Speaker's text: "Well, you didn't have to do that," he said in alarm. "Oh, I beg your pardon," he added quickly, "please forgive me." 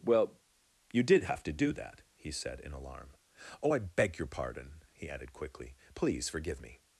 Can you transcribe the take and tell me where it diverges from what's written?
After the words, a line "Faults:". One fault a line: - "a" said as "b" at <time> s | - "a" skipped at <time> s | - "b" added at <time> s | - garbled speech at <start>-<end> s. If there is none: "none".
"Well, you did have to do that," he said in alarm. "Oh, I beg your pardon," he added quickly, "please forgive me."
Faults:
- "didn't" said as "did" at 1.0 s